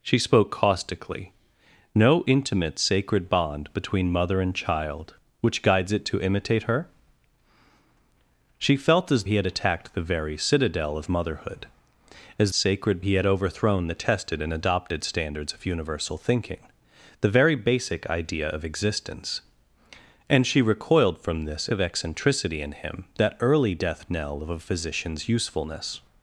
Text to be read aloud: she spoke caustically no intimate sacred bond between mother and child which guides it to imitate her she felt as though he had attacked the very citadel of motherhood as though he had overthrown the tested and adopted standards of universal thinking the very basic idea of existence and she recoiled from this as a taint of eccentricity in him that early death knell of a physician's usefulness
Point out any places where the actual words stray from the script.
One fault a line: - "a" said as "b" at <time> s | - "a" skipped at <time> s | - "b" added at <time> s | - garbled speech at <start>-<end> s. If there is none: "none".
- "though" skipped at 9.2 s
- "though" said as "sacred" at 12.5 s
- "as a taint" skipped at 21.7 s